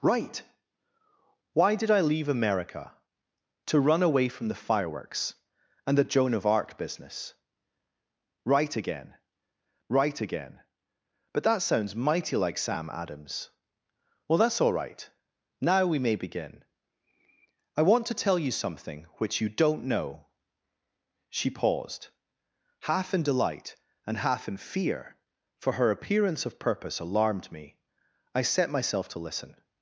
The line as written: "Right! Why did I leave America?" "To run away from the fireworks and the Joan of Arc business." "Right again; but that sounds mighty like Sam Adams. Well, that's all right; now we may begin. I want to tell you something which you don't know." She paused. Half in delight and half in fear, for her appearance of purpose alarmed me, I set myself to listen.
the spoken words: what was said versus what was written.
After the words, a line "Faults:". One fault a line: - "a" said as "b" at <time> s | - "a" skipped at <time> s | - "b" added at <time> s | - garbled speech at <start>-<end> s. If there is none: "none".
"Right! Why did I leave America?" "To run away from the fireworks and the Joan of Arc business." "Right again right again; but that sounds mighty like Sam Adams. Well, that's all right; now we may begin. I want to tell you something which you don't know." She paused. Half in delight and half in fear, for her appearance of purpose alarmed me, I set myself to listen.
Faults:
- "right again" added at 9.9 s